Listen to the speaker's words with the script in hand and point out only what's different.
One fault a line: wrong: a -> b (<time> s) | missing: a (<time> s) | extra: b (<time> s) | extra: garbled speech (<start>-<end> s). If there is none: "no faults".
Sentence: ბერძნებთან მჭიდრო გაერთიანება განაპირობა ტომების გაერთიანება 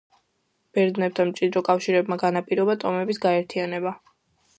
wrong: გაერთიანება -> კავშირებმა (1.7 s)